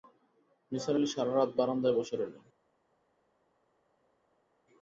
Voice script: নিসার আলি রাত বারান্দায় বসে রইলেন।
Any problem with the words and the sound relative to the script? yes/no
yes